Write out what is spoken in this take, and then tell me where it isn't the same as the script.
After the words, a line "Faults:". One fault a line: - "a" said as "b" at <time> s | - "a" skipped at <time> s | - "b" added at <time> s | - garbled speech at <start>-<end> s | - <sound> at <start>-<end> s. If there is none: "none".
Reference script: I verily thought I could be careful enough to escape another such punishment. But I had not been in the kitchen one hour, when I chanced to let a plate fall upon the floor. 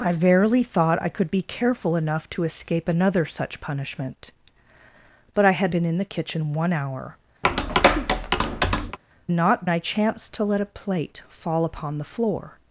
I verily thought I could be careful enough to escape another such punishment. But I had been in the kitchen one hour, not I chanced to let a plate fall upon the floor.
Faults:
- "not" skipped at 5.8 s
- tap at 7.4-9.0 s
- "when" said as "not" at 9.3 s